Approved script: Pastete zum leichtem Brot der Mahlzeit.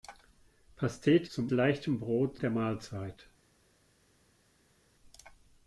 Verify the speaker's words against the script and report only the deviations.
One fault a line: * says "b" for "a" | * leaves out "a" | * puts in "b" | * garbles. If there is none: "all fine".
all fine